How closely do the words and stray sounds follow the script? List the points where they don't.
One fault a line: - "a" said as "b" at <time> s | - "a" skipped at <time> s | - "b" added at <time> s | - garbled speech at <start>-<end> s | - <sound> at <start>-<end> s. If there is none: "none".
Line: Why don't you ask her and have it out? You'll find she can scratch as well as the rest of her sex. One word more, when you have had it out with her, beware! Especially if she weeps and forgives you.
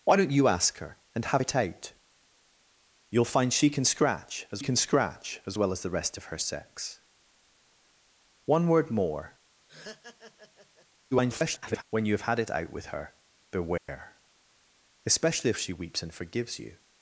- "can scratch as" added at 4.6 s
- laugh at 9.7-10.9 s
- garbled speech at 11.1-11.8 s
- dropout at 13.8-13.9 s